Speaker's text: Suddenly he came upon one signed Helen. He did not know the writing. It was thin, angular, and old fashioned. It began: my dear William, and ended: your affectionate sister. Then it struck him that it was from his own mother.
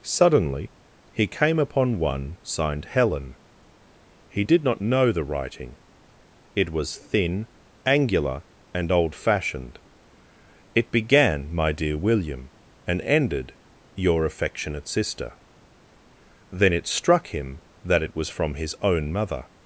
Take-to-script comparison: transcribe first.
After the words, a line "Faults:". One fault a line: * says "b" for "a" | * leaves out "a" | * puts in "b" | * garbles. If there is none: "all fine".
Suddenly he came upon one signed Helen. He did not know the writing. It was thin, angular, and old fashioned. It began: my dear William, and ended: your affectionate sister. Then it struck him that it was from his own mother.
Faults:
all fine